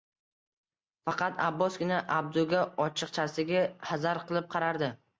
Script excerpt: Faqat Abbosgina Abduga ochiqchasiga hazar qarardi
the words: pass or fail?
fail